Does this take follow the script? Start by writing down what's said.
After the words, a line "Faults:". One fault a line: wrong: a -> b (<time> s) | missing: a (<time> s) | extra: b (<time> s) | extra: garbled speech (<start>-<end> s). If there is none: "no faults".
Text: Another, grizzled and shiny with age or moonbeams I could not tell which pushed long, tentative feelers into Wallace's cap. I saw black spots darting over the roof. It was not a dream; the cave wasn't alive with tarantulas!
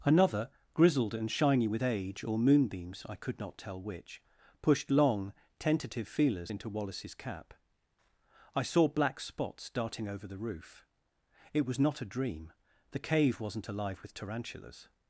Another, grizzled and shiny with age or moonbeams I could not tell which pushed long, tentative feelers into Wallace's cap. I saw black spots darting over the roof. It was not a dream; the cave wasn't alive with tarantulas!
Faults:
no faults